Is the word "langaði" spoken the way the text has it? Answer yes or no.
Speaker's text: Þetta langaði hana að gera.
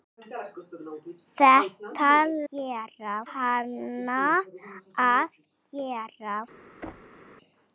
no